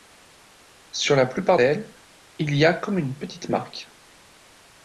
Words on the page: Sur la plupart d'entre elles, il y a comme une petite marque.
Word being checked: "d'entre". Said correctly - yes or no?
no